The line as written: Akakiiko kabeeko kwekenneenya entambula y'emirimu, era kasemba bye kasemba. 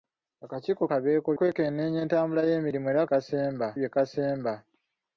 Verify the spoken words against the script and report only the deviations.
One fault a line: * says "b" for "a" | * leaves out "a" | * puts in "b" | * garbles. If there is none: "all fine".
all fine